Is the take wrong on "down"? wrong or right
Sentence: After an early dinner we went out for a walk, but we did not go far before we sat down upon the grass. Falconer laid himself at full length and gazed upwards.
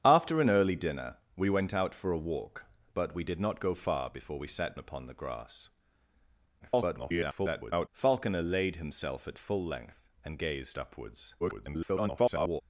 wrong